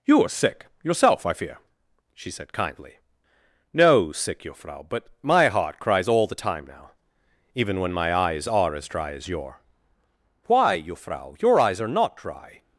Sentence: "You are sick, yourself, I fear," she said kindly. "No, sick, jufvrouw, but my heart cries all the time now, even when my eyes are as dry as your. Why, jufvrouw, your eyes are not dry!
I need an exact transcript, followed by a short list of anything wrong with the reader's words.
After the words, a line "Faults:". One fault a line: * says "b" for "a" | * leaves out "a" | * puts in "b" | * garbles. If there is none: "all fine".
"You are sick, yourself, I fear," she said kindly. "No, sick, jufvrouw, but my heart cries all the time now, even when my eyes are as dry as your. Why, jufvrouw, your eyes are not dry!
Faults:
all fine